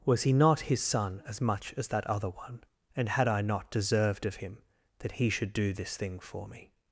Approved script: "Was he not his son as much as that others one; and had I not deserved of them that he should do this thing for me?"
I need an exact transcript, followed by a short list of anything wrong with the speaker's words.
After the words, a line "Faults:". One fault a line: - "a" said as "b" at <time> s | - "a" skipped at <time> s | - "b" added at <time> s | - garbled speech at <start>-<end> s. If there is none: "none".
"Was he not his son as much as that other one; and had I not deserved of him that he should do this thing for me?"
Faults:
- "others" said as "other" at 2.1 s
- "them" said as "him" at 4.4 s